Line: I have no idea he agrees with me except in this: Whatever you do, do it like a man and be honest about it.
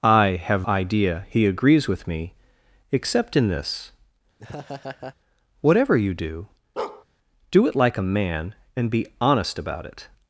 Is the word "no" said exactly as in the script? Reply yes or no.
no